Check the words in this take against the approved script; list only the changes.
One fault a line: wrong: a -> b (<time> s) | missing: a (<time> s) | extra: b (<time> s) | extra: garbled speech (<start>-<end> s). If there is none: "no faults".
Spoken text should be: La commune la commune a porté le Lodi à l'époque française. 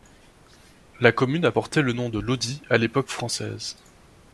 missing: la commune (1.4 s)
extra: nom de (1.9 s)